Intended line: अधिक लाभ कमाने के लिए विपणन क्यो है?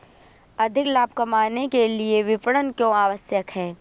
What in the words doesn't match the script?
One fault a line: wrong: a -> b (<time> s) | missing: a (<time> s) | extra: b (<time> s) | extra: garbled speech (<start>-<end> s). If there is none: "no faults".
extra: आवश्यक (2.9 s)